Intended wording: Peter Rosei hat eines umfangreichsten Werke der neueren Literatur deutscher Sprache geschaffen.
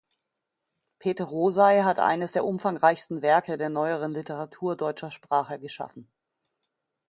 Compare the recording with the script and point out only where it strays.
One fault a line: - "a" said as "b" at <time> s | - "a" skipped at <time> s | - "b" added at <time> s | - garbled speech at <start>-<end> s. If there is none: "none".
- "der" added at 2.3 s